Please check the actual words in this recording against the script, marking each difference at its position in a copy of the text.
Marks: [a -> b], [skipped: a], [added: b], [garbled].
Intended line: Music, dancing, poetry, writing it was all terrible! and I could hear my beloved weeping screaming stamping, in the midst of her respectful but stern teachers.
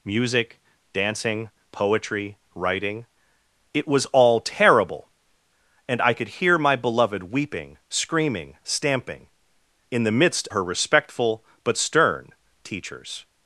Music, dancing, poetry, writing it was all terrible! and I could hear my beloved weeping screaming stamping, in the midst [skipped: of] her respectful but stern teachers.